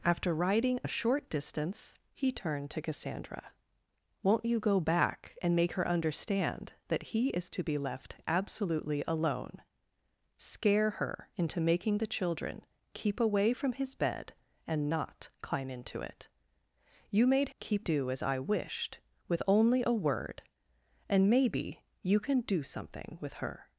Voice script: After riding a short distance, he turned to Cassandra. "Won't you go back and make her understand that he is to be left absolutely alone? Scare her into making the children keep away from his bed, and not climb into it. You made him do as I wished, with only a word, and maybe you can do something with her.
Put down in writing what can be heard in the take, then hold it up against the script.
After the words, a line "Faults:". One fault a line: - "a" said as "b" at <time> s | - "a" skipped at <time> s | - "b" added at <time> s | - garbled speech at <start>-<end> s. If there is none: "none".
After riding a short distance, he turned to Cassandra. "Won't you go back and make her understand that he is to be left absolutely alone? Scare her into making the children keep away from his bed, and not climb into it. You made keep do as I wished, with only a word, and maybe you can do something with her.
Faults:
- "him" said as "keep" at 17.6 s